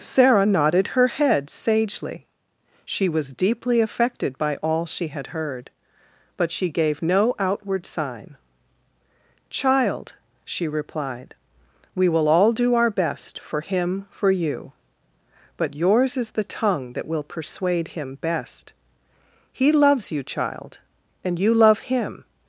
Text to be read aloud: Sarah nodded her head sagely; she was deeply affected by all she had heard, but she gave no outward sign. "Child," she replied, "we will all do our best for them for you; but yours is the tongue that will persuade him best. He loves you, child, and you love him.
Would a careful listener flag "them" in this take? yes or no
yes